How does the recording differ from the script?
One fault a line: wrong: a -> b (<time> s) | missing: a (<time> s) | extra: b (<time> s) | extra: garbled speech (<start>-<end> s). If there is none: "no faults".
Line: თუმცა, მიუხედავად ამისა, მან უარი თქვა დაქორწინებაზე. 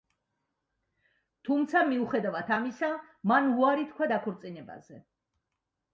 no faults